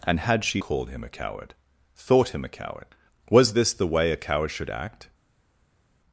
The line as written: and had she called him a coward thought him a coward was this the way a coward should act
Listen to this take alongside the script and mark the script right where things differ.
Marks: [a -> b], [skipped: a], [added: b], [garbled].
and had she called him a coward thought him a coward was this the way a coward should act